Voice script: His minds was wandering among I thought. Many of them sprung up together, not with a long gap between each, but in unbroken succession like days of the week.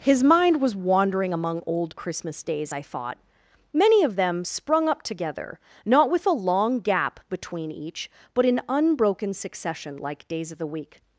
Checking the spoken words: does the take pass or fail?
fail